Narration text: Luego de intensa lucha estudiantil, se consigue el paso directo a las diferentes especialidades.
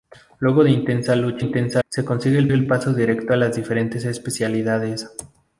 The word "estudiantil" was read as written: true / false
false